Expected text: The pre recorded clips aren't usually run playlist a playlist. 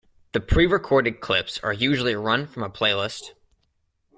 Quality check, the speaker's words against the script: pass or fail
fail